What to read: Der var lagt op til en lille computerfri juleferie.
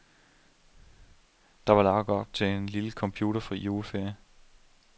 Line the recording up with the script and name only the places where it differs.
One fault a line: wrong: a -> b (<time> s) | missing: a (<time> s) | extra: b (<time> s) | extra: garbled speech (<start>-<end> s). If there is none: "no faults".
no faults